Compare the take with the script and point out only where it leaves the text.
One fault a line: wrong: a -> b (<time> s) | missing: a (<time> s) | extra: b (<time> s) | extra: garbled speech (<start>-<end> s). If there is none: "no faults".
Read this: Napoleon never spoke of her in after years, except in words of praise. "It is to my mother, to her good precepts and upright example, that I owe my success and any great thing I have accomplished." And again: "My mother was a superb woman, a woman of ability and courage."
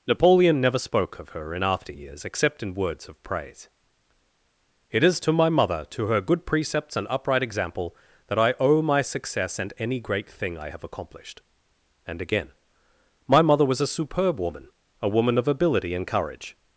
no faults